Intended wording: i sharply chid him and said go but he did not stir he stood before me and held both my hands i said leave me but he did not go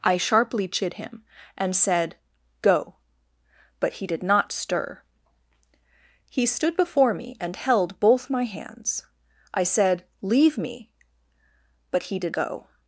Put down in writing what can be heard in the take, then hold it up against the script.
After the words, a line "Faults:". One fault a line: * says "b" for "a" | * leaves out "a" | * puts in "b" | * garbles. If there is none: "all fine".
i sharply chid him and said go but he did not stir he stood before me and held both my hands i said leave me but he did go
Faults:
* leaves out "not"